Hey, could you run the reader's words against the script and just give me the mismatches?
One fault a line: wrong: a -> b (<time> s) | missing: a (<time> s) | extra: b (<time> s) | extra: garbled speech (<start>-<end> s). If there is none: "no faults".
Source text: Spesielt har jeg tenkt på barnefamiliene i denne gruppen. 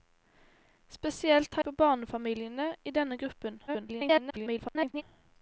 missing: jeg tenkt (1.6 s)
extra: garbled speech (3.7-5.0 s)